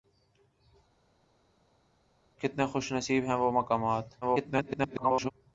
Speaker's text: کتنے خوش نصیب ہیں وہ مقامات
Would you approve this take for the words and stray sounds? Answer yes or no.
no